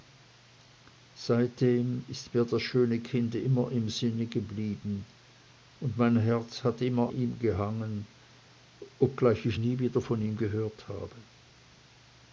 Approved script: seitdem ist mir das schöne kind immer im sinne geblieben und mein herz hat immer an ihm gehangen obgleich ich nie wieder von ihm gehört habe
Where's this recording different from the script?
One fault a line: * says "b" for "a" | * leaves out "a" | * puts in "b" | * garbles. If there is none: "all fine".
* leaves out "an"